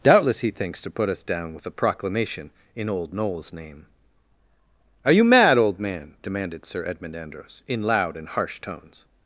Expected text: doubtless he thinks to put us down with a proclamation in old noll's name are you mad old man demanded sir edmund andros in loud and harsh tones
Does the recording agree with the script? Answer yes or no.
yes